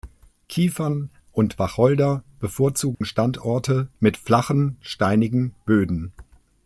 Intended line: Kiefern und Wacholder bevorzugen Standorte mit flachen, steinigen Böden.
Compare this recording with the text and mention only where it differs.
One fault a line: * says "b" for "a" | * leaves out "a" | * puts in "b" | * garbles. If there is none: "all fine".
all fine